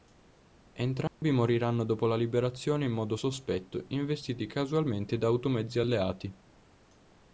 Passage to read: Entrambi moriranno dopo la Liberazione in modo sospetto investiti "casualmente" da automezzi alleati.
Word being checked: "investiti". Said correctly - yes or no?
yes